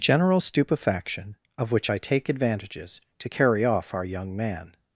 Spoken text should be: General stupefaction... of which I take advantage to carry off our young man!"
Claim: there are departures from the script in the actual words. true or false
true